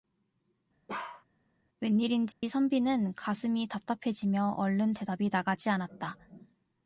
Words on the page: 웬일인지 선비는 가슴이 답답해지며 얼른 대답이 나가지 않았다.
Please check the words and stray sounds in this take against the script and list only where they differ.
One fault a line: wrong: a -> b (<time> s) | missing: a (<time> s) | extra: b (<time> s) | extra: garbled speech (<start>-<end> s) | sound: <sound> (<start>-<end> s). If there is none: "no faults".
sound: bark (0.9-1.2 s)
sound: dropout (2.3-2.4 s)